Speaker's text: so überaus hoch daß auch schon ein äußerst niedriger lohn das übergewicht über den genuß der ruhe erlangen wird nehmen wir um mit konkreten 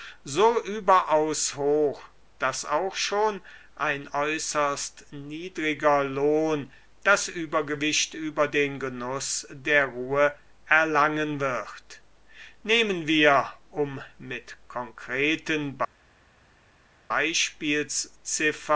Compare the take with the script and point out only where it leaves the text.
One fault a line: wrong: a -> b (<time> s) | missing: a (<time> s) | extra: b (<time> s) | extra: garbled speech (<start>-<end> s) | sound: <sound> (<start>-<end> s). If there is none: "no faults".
no faults